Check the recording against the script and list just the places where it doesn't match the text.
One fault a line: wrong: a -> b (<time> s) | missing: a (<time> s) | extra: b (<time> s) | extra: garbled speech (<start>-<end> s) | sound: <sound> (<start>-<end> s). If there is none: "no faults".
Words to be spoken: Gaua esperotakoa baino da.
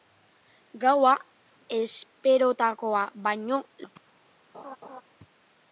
sound: laugh (4.5-5.0 s)